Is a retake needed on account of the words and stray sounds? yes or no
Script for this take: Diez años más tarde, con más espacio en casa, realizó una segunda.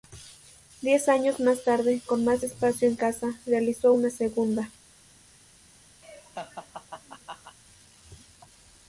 yes